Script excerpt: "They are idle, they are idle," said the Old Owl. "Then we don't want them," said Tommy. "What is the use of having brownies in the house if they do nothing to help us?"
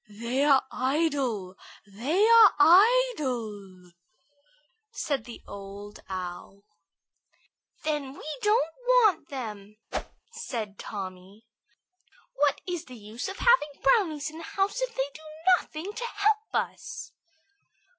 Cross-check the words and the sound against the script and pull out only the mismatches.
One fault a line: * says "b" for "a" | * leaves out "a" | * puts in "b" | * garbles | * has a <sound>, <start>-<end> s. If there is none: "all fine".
* has a whoosh, 9.9-10.2 s